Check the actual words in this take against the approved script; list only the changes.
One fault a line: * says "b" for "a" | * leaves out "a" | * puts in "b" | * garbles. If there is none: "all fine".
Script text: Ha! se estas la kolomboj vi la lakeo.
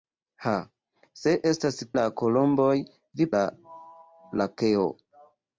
all fine